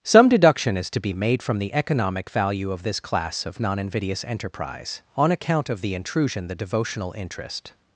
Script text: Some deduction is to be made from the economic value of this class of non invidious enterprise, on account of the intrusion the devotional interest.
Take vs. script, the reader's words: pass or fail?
pass